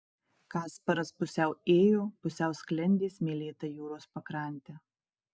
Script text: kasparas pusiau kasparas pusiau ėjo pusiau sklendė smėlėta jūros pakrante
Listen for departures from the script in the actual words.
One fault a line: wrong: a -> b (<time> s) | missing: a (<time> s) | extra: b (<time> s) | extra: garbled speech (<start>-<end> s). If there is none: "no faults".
missing: kasparas pusiau (1.5 s)